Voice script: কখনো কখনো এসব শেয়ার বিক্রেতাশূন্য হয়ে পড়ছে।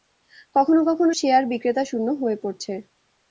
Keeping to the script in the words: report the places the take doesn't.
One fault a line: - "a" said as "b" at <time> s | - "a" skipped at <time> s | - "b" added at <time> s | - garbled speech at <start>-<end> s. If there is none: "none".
- "এসব" skipped at 1.1 s